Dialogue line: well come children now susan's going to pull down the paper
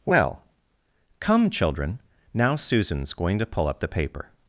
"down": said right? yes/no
no